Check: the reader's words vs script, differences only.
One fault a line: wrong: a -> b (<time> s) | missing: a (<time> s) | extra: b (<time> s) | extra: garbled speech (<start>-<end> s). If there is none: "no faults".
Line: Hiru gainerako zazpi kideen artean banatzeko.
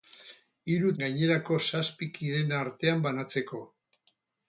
no faults